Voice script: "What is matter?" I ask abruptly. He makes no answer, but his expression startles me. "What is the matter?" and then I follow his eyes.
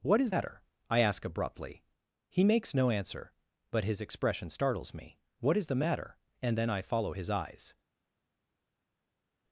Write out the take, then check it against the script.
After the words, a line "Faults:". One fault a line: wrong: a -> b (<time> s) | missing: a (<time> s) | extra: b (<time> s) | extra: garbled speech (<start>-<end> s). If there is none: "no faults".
"What is matter?" I ask abruptly. He makes no answer, but his expression startles me. "What is the matter?" and then I follow his eyes.
Faults:
no faults